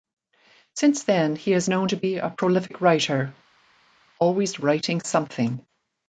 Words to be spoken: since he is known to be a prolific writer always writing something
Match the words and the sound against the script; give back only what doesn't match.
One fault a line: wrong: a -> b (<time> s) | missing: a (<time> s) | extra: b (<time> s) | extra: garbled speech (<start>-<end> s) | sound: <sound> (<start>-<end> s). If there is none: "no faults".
extra: then (1.0 s)